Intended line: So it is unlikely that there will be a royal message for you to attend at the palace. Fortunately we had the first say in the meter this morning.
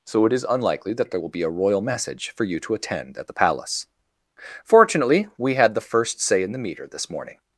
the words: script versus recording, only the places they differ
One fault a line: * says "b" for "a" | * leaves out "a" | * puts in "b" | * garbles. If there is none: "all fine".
all fine